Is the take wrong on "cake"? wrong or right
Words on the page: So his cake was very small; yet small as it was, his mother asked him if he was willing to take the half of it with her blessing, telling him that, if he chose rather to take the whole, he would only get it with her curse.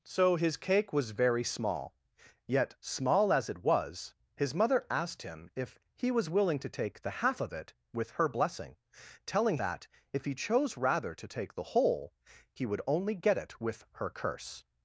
right